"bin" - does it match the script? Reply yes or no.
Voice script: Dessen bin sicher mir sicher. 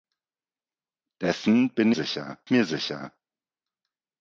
yes